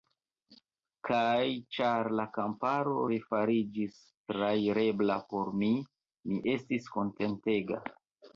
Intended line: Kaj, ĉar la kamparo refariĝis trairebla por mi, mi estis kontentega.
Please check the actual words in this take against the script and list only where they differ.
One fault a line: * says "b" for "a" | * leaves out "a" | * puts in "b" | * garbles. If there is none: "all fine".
all fine